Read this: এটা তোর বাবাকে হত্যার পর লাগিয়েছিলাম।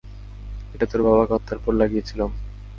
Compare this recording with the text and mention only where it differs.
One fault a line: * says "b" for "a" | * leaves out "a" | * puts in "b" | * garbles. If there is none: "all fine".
all fine